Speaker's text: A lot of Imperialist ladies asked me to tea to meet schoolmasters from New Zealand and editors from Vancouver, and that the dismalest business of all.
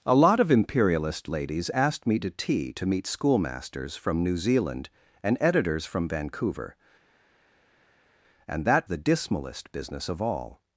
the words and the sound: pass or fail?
pass